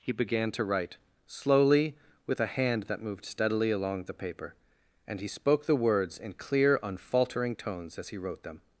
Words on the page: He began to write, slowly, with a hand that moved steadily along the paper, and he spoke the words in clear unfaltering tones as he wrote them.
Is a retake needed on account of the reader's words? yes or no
no